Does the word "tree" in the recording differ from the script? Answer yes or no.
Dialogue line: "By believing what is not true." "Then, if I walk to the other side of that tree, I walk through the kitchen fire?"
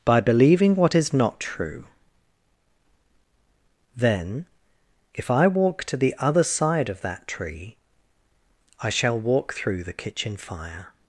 no